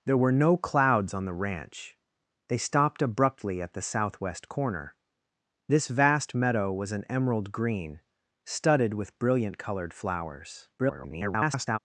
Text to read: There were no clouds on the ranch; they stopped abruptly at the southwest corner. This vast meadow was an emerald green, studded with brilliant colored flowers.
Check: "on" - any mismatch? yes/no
no